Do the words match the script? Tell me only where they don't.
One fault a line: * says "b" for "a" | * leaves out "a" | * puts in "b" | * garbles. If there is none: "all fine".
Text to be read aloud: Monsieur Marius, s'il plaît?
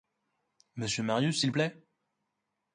all fine